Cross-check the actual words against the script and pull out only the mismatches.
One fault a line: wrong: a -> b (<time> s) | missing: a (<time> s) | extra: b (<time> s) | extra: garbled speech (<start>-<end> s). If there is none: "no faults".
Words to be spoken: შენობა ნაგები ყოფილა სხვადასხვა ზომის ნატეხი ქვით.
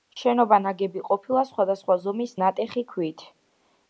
no faults